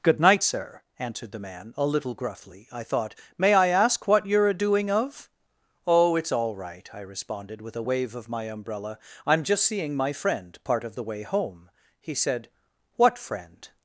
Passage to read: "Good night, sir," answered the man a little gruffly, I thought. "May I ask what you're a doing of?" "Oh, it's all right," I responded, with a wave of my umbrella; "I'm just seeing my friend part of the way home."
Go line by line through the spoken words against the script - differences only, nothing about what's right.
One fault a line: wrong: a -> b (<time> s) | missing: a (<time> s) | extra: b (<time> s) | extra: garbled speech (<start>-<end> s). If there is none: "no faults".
extra: He said What friend (12.0 s)